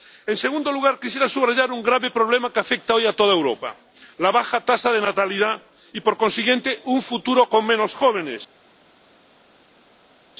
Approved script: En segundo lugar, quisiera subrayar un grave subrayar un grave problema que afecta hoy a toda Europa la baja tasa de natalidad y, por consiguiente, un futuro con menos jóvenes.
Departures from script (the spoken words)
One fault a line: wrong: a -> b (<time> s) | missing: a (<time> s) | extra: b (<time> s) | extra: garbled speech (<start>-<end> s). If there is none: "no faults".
missing: subrayar un grave (2.1 s)